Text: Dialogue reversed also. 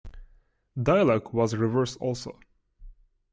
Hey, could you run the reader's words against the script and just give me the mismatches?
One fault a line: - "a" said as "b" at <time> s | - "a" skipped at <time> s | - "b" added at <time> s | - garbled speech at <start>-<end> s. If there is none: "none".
- "was" added at 1.3 s